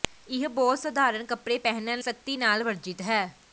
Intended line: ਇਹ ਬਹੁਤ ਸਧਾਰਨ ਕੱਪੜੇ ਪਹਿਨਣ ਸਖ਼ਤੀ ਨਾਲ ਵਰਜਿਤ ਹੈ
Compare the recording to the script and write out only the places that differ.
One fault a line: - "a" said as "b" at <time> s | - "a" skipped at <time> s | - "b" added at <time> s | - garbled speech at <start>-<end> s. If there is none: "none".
none